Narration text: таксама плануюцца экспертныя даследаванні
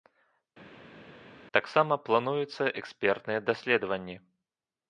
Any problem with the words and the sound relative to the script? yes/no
no